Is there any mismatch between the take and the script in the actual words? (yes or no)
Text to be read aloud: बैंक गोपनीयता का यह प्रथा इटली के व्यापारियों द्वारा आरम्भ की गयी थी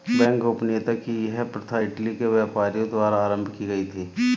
yes